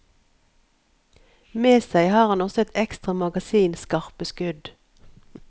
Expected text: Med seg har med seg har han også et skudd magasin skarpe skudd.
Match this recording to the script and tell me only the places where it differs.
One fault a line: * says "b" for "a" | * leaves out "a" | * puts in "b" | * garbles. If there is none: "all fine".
* leaves out "med seg har"
* says "ekstra" for "skudd"